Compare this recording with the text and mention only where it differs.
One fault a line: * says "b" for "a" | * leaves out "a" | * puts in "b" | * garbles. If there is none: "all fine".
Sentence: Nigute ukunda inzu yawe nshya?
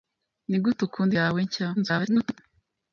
* leaves out "inzu"
* garbles